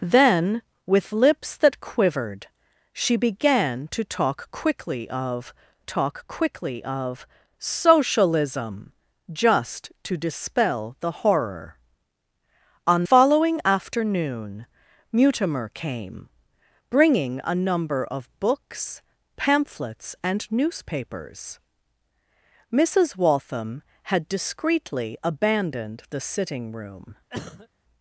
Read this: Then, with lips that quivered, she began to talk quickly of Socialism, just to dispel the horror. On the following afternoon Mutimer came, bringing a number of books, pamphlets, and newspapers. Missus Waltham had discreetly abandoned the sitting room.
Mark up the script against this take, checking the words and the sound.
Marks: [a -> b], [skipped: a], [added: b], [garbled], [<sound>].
Then, with lips that quivered, she began to talk quickly of [added: talk quickly of] Socialism, just to dispel the horror. On [skipped: the] following afternoon Mutimer came, bringing a number of books, pamphlets, and newspapers. Missus Waltham had discreetly abandoned the sitting room. [cough]